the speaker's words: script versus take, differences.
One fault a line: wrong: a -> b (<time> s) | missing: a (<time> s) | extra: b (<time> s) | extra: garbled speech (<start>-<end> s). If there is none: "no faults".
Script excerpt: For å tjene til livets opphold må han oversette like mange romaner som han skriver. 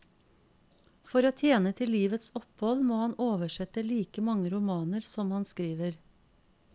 no faults